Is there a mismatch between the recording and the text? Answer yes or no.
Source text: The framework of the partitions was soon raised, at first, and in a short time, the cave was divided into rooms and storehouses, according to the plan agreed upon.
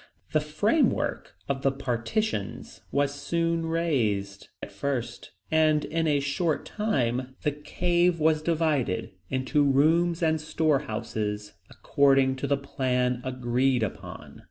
no